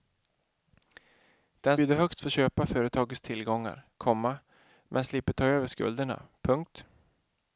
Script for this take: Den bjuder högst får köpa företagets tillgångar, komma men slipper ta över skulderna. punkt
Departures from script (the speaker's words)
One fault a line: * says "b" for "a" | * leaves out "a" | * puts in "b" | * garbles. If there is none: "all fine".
all fine